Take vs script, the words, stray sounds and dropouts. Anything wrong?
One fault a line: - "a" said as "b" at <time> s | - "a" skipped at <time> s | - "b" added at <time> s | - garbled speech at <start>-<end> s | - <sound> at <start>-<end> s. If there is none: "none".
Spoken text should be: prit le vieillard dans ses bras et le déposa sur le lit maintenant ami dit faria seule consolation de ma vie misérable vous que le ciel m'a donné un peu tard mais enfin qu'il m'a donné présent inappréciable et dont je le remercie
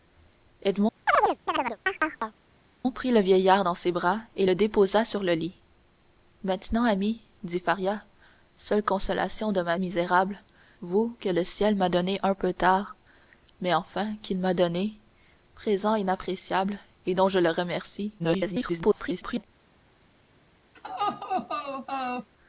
- chirp at 1.1-2.4 s
- "vie" skipped at 9.8 s
- garbled speech at 18.2-19.4 s
- laugh at 20.7-22.3 s